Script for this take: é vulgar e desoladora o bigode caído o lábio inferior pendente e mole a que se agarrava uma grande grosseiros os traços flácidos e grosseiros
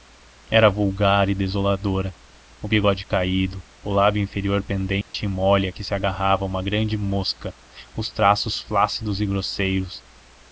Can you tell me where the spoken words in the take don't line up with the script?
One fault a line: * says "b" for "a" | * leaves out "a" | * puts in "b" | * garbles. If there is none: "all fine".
* says "era" for "é"
* says "mosca" for "grosseiros"